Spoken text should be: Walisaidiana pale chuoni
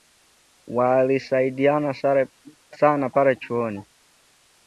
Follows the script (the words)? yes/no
no